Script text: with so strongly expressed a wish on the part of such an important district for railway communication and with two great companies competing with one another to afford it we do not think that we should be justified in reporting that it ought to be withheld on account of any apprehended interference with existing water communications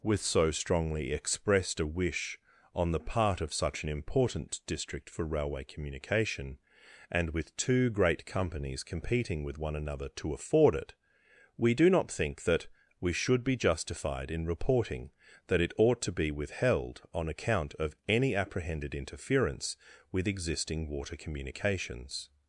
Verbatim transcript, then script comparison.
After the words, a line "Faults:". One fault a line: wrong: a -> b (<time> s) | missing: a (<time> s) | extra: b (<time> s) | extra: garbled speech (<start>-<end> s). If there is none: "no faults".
with so strongly expressed a wish on the part of such an important district for railway communication and with two great companies competing with one another to afford it we do not think that we should be justified in reporting that it ought to be withheld on account of any apprehended interference with existing water communications
Faults:
no faults